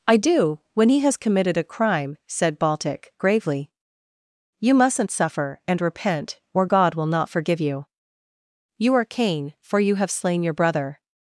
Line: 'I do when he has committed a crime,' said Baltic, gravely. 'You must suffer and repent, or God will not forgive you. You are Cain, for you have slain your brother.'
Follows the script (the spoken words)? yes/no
no